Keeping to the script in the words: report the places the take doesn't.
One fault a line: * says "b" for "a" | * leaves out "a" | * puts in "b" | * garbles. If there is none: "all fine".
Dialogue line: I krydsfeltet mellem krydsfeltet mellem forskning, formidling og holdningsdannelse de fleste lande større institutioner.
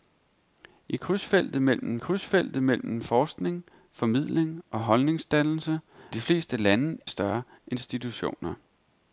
all fine